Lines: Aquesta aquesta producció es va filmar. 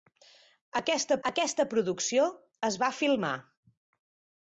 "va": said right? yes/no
yes